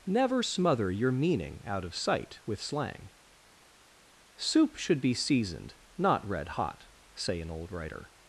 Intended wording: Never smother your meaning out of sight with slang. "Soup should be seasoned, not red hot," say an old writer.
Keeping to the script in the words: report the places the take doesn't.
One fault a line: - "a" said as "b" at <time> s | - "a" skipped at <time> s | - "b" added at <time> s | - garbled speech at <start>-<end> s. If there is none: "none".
none